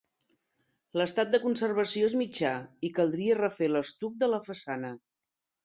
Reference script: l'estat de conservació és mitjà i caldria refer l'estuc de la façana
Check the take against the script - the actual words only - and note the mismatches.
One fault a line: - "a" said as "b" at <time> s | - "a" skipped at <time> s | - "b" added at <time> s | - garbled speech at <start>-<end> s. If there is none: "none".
none